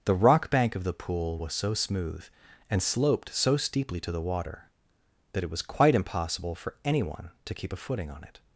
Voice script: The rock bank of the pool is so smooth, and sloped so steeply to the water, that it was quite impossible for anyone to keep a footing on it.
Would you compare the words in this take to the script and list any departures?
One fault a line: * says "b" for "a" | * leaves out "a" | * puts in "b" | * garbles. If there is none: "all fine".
* says "was" for "is"